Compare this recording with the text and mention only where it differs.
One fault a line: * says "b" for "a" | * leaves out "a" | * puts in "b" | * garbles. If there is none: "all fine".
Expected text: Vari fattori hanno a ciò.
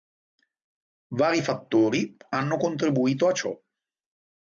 * puts in "contribuito"